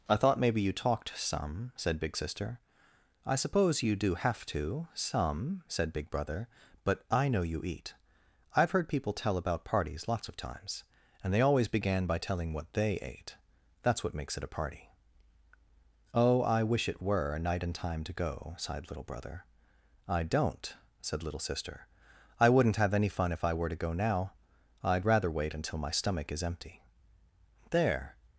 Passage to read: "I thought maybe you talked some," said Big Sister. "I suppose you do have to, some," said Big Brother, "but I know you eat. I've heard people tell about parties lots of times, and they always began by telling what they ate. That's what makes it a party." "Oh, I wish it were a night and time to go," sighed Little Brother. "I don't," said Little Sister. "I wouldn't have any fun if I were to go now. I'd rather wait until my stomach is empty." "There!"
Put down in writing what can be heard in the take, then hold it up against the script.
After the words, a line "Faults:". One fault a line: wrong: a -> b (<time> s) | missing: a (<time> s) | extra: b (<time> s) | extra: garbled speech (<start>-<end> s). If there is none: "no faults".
"I thought maybe you talked some," said Big Sister. "I suppose you do have to, some," said Big Brother, "but I know you eat. I've heard people tell about parties lots of times, and they always began by telling what they ate. That's what makes it a party." "Oh, I wish it were a night and time to go," sighed Little Brother. "I don't," said Little Sister. "I wouldn't have any fun if I were to go now. I'd rather wait until my stomach is empty." "There!"
Faults:
no faults